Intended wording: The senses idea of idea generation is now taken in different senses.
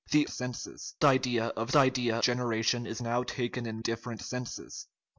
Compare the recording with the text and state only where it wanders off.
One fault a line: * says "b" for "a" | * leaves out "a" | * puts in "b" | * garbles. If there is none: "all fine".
all fine